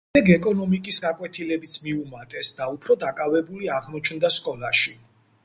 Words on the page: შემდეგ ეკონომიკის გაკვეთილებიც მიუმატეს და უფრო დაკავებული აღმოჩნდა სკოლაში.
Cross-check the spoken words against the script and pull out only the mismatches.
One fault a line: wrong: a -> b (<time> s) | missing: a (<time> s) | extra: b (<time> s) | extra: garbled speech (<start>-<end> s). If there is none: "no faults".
no faults